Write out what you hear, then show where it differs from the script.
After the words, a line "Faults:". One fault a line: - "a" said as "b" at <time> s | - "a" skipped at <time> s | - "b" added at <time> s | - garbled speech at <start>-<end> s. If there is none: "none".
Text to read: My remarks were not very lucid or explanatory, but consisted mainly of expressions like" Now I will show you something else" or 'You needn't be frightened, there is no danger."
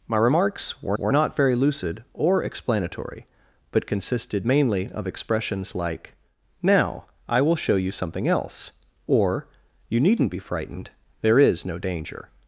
My remarks were were not very lucid or explanatory, but consisted mainly of expressions like" Now I will show you something else" or 'You needn't be frightened, there is no danger."
Faults:
- "were" added at 1.0 s